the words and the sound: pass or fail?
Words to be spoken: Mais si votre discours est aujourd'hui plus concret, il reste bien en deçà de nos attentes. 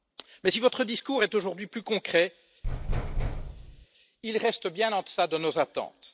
fail